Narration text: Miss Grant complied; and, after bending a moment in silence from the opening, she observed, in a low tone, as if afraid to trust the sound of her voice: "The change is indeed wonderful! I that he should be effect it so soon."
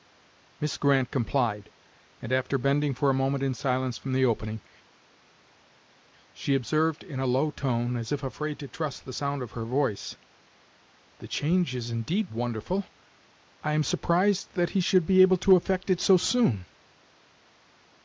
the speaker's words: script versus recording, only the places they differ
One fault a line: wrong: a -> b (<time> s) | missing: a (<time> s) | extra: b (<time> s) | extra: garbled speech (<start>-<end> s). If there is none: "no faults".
extra: for (3.0 s)
extra: am surprised (13.7 s)
extra: able to (15.2 s)